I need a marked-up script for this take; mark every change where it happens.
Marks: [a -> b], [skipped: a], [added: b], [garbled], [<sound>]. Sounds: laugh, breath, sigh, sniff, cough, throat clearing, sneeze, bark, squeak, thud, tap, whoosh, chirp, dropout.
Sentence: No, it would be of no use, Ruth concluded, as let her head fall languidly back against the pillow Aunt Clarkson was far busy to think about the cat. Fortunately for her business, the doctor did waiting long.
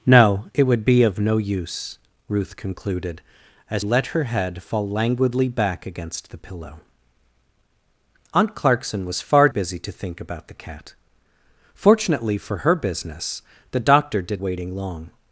No, it would be of no use, Ruth concluded, as let her head fall languidly back against the pillow Aunt Clarkson was far busy to think about the cat. Fortunately for her business, the doctor did waiting long.